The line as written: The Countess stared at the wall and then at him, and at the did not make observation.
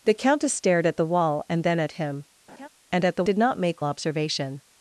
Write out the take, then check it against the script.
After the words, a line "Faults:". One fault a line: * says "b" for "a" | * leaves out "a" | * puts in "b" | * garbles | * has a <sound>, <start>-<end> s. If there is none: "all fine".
The Countess stared at the wall and then at him, and at the did not make observation.
Faults:
* has a laugh, 2.5-2.7 s